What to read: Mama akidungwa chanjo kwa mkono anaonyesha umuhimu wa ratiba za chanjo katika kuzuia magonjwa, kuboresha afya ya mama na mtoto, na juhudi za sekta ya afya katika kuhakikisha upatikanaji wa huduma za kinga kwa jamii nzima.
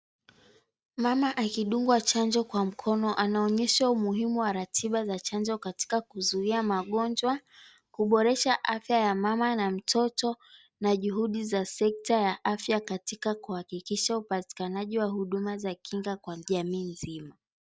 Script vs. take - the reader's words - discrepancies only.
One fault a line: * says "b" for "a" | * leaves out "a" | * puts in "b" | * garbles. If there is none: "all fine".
all fine